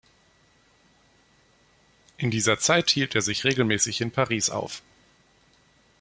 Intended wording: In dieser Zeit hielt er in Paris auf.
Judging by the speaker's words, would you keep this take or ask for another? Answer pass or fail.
fail